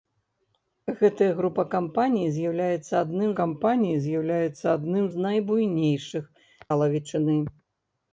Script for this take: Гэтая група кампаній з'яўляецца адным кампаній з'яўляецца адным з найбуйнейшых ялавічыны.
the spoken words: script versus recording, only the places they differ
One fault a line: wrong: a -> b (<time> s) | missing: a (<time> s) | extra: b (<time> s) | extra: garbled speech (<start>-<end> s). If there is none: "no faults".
no faults